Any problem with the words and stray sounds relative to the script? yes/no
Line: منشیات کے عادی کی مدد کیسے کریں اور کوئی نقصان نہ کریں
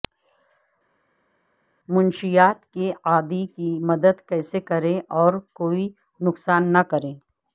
no